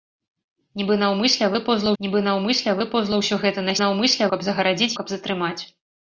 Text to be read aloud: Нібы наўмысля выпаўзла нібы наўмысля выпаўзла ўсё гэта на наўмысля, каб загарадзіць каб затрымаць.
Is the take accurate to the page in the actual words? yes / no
yes